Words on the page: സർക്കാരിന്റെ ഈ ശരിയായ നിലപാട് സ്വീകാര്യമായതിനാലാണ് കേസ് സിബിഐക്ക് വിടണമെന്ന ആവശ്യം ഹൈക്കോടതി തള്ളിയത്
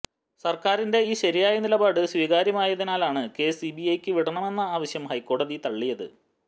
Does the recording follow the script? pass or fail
pass